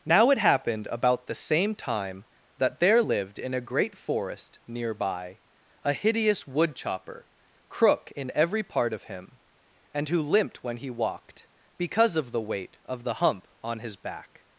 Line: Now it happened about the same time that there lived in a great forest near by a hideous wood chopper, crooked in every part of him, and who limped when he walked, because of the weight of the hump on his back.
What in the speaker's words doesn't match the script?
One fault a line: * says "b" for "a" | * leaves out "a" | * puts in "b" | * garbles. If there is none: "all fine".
* says "crook" for "crooked"